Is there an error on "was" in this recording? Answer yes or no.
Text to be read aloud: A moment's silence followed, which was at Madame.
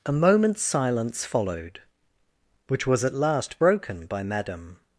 no